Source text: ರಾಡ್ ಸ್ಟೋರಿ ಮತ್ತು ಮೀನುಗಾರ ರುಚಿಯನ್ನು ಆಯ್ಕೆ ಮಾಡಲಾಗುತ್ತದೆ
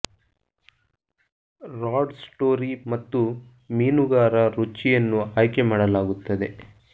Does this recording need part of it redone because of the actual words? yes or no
no